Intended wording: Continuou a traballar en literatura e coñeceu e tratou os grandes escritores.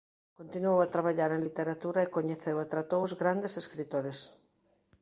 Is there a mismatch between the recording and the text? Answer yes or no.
no